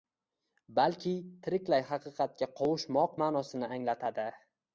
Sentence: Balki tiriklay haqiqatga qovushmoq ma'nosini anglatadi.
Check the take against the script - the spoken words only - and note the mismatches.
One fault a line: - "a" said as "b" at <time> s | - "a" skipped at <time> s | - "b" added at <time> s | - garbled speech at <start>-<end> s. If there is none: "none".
none